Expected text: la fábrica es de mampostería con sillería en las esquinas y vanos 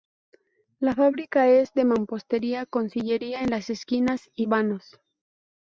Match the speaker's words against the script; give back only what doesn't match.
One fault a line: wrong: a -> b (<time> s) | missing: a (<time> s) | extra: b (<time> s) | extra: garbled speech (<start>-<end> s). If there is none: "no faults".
no faults